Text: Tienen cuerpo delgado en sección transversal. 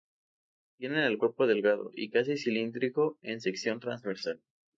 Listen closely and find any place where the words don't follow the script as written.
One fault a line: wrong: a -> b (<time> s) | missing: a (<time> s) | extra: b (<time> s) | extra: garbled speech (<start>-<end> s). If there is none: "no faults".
extra: el (1.0 s)
extra: y casi cilíndrico (1.9 s)